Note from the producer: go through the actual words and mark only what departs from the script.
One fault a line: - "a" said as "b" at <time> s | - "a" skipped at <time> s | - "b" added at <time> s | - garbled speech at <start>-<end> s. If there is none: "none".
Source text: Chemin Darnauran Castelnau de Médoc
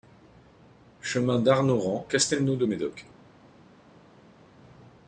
none